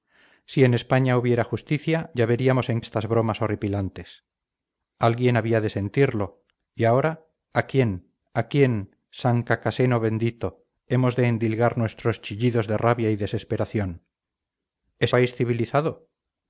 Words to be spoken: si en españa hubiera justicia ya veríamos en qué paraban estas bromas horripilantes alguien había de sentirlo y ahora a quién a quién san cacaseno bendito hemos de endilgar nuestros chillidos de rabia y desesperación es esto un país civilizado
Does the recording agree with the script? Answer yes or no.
no